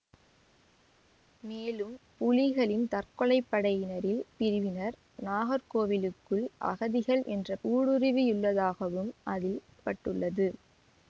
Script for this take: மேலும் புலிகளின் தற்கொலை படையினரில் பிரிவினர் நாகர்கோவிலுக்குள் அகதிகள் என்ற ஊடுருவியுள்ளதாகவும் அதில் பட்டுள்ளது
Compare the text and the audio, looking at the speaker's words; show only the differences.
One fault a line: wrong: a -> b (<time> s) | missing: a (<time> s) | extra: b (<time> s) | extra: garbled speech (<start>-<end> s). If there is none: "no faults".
no faults